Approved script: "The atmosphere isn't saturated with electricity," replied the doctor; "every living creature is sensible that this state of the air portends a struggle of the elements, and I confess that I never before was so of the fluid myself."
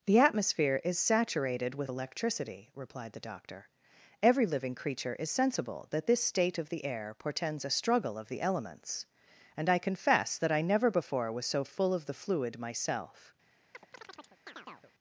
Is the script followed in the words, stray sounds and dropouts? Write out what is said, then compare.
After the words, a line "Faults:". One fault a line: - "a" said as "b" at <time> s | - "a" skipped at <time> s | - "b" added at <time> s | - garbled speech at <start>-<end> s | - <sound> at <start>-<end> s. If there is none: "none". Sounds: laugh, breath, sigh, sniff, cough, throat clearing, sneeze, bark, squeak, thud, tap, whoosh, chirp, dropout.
"The atmosphere is saturated with electricity," replied the doctor; "every living creature is sensible that this state of the air portends a struggle of the elements, and I confess that I never before was so full of the fluid myself."
Faults:
- "isn't" said as "is" at 0.8 s
- "full" added at 11.6 s
- chirp at 13.7-14.9 s